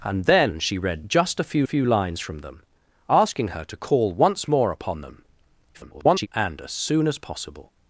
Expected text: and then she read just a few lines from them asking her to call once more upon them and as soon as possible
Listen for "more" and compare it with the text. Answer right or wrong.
right